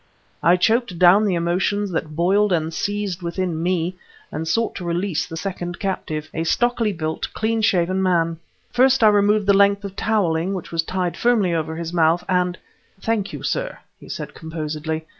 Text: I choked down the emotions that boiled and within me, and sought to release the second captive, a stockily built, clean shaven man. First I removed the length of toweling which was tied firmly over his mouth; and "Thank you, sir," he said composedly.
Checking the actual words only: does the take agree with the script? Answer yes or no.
no